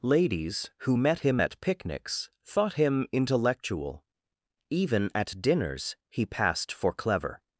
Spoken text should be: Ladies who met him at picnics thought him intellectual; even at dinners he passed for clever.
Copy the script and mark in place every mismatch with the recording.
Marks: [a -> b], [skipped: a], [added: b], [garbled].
Ladies who met him at picnics thought him intellectual; even at dinners he passed for clever.